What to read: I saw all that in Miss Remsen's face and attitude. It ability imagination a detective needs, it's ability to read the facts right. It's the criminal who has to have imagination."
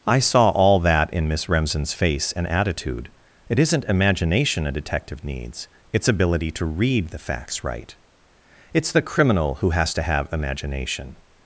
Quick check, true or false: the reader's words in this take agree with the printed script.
false